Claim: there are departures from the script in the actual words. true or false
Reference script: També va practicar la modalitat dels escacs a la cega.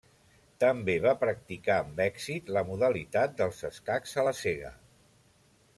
true